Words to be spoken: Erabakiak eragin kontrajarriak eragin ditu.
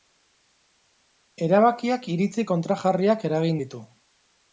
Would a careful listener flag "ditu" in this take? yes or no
no